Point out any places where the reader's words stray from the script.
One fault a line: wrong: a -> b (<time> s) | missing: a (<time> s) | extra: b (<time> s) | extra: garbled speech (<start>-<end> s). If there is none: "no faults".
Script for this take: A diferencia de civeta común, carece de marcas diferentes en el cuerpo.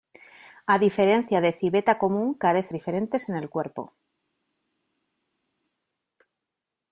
missing: de marcas (2.7 s)